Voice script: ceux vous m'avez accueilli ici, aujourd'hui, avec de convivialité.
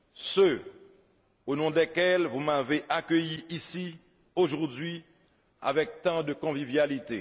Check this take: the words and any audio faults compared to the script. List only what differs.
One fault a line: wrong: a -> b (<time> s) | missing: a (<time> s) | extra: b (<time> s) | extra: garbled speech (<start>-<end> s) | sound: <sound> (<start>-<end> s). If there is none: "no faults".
extra: au nom desquels (1.4 s)
extra: tant (6.0 s)